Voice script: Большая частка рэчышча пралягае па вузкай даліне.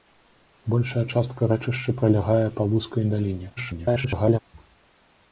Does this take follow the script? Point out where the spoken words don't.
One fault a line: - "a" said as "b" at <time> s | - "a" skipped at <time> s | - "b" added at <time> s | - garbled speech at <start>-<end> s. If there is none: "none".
- garbled speech at 3.6-4.4 s